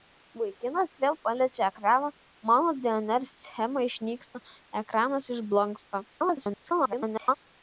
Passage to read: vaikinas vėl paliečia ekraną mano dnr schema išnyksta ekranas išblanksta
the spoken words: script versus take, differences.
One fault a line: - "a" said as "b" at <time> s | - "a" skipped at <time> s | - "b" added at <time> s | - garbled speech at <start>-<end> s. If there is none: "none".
- garbled speech at 6.1-7.3 s